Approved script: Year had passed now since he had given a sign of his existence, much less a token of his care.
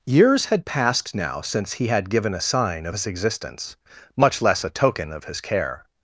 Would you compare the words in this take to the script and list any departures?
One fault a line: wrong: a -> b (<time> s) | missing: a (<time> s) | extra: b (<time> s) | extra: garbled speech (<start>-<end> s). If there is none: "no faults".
wrong: Year -> Years (0.1 s)